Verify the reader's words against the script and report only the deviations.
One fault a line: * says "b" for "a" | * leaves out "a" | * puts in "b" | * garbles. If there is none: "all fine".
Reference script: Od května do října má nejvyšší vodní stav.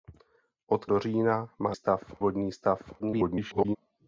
* leaves out "května"
* says "stav" for "nejvyšší"
* garbles